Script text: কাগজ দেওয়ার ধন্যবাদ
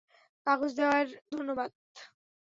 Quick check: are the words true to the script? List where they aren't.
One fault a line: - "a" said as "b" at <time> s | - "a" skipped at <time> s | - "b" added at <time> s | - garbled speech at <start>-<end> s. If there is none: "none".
none